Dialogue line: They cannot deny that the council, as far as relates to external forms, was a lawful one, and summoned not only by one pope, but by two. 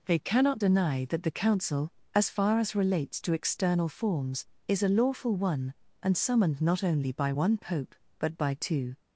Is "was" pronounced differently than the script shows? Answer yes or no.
yes